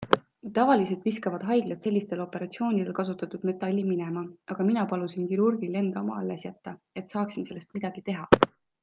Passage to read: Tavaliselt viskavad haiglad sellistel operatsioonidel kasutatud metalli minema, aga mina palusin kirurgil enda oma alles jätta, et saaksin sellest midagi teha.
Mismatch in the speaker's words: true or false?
false